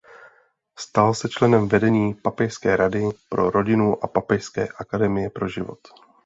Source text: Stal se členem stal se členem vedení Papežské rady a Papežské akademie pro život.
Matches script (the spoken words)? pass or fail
fail